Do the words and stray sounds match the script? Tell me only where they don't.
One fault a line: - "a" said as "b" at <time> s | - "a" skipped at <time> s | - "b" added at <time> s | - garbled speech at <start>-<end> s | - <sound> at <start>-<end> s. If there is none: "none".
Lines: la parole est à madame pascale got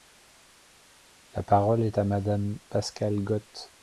none